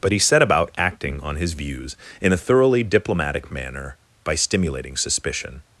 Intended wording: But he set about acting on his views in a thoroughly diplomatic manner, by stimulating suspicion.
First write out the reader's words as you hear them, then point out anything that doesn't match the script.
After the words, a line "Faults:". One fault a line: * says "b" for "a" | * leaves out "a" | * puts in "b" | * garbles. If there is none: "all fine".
But he set about acting on his views in a thoroughly diplomatic manner, by stimulating suspicion.
Faults:
all fine